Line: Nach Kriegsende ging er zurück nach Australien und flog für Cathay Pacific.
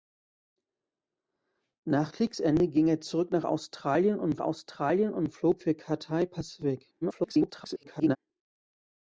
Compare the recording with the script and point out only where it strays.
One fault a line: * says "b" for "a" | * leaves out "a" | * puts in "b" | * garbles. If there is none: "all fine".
* puts in "Australien und"
* garbles